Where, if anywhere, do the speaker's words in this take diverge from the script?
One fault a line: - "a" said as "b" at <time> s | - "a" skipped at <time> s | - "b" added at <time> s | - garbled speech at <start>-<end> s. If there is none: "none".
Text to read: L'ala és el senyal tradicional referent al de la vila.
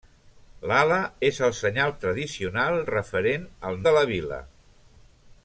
none